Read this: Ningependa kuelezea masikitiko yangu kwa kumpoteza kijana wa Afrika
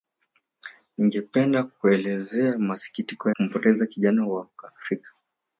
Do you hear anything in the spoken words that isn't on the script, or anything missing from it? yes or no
yes